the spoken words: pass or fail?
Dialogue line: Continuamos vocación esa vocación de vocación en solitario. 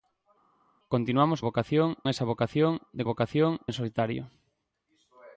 pass